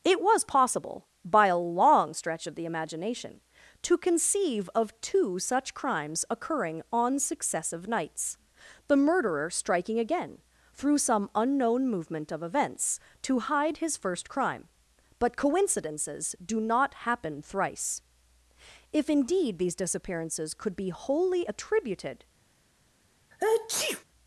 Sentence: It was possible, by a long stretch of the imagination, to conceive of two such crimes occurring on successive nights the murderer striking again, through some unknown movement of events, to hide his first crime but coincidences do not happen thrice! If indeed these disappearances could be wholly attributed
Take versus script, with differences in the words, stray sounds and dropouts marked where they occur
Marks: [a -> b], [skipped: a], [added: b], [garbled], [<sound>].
It was possible, by a long stretch of the imagination, to conceive of two such crimes occurring on successive nights the murderer striking again, through some unknown movement of events, to hide his first crime but coincidences do not happen thrice! If indeed these disappearances could be wholly attributed [sneeze]